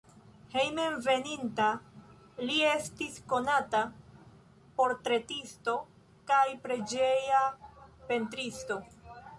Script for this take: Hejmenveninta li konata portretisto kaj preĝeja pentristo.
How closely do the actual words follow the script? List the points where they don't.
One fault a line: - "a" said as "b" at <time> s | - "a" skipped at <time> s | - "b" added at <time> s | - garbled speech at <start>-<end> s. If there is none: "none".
- "estis" added at 2.7 s